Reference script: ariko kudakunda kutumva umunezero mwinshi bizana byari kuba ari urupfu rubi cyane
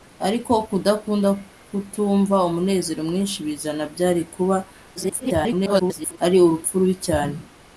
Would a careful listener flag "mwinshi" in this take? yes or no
no